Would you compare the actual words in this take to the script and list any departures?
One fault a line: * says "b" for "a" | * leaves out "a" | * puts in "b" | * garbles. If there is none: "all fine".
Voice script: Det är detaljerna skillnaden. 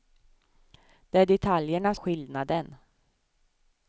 all fine